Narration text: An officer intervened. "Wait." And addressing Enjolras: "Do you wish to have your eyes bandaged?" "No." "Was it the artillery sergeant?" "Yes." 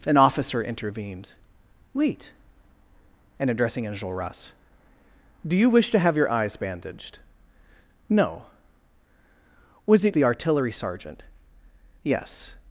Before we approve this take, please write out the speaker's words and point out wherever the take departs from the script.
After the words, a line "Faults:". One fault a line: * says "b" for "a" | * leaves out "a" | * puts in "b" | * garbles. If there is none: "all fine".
An officer intervened. "Wait." And addressing Enjolras: "Do you wish to have your eyes bandaged?" "No." "Was it the artillery sergeant?" "Yes."
Faults:
all fine